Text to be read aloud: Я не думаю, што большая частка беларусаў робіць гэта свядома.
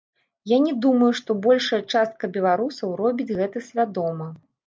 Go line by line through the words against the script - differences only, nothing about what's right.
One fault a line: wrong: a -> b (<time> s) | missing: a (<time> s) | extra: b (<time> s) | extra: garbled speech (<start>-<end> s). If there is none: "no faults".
no faults